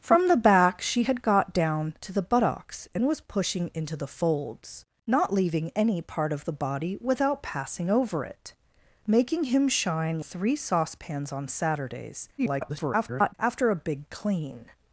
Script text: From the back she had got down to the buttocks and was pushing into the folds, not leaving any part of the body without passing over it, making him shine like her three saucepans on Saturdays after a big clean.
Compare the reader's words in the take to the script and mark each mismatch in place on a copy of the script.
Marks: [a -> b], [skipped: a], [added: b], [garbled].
From the back she had got down to the buttocks and was pushing into the folds, not leaving any part of the body without passing over it, making him shine [skipped: like her] three saucepans on Saturdays [garbled] after a big clean.